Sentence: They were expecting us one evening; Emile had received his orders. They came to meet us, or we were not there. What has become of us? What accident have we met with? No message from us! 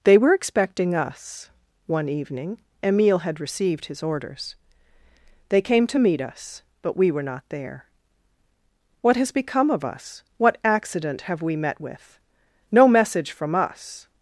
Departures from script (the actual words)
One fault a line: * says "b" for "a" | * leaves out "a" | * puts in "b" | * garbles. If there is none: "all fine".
* says "but" for "or"